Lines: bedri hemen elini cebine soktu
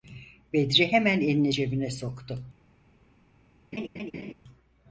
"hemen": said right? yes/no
yes